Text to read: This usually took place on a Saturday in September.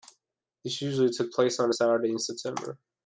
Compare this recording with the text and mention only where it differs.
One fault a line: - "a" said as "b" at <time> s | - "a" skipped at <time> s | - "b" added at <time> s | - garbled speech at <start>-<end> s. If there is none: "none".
none